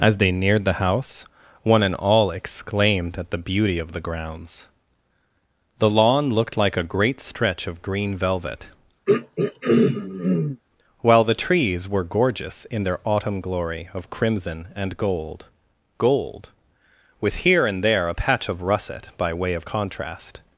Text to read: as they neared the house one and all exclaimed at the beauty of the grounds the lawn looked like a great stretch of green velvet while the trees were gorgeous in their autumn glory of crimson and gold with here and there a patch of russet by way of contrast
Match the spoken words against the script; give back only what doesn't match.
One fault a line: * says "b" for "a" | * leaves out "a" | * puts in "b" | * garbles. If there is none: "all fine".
* puts in "gold"